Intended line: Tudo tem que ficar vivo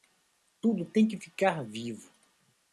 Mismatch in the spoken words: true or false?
false